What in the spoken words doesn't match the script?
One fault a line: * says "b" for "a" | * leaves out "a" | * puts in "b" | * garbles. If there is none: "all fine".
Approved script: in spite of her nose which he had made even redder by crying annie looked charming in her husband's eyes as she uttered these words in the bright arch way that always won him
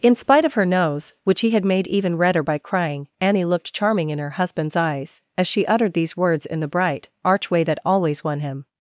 all fine